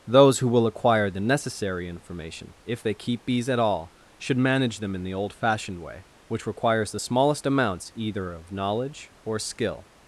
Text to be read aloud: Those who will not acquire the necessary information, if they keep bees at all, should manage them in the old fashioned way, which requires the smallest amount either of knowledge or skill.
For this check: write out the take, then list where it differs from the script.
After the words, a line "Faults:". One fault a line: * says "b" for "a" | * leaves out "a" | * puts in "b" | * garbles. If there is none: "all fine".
Those who will acquire the necessary information, if they keep bees at all, should manage them in the old fashioned way, which requires the smallest amounts either of knowledge or skill.
Faults:
* leaves out "not"
* says "amounts" for "amount"